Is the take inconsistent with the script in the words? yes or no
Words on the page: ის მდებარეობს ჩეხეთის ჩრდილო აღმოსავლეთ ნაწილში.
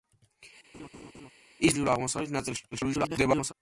yes